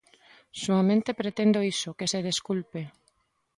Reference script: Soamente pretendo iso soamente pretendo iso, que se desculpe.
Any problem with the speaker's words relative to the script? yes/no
yes